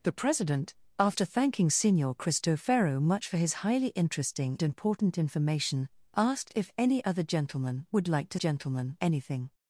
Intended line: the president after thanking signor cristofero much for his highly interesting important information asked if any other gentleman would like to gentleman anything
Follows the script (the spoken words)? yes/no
yes